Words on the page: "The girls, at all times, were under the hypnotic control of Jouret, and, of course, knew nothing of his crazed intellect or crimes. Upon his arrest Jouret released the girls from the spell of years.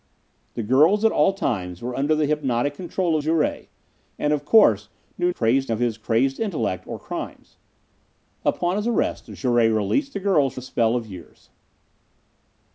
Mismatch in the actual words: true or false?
true